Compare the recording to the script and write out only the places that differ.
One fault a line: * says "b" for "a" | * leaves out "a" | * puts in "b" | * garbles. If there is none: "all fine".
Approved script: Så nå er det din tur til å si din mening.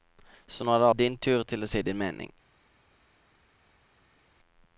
all fine